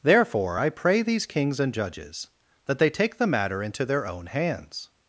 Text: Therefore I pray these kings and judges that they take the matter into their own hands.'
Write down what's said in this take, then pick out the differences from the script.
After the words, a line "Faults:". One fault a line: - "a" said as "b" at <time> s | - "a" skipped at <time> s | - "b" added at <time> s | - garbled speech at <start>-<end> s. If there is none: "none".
Therefore I pray these kings and judges that they take the matter into their own hands.'
Faults:
none